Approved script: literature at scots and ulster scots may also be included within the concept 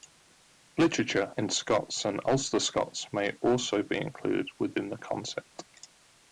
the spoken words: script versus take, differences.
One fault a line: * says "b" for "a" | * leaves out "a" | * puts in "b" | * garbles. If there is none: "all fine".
* says "in" for "at"